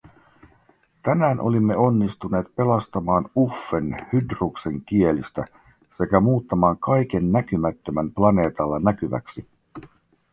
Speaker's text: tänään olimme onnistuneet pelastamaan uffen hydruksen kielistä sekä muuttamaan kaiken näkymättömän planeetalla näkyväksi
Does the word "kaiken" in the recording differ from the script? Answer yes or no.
no